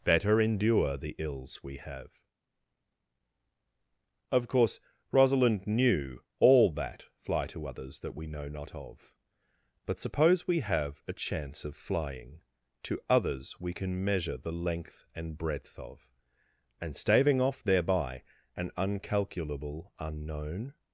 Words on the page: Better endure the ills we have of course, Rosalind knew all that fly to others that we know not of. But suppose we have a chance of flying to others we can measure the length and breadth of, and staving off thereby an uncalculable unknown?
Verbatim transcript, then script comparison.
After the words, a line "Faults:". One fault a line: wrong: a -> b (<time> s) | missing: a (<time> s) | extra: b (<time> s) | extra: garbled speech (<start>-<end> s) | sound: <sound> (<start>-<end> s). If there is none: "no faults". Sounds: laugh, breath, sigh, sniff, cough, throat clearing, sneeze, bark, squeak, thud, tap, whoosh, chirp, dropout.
Better endure the ills we have of course, Rosalind knew all that fly to others that we know not of. But suppose we have a chance of flying to others we can measure the length and breadth of, and staving off thereby an uncalculable unknown?
Faults:
no faults